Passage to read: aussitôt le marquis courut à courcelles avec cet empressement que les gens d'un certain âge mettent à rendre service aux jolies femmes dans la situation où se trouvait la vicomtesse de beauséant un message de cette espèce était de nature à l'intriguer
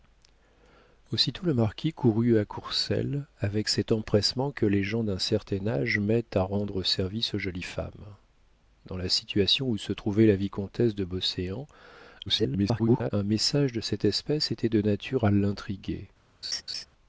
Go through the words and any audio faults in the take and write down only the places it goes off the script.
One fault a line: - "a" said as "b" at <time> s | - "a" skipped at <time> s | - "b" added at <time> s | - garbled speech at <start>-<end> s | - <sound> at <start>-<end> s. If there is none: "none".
- garbled speech at 12.3-13.1 s
- laugh at 16.4-16.9 s